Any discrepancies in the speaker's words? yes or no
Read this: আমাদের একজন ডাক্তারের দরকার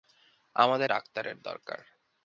yes